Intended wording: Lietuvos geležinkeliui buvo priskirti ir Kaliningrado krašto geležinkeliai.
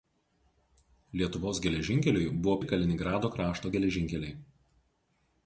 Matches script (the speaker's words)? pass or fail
fail